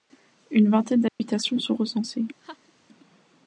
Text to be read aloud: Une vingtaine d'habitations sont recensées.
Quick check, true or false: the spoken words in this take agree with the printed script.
true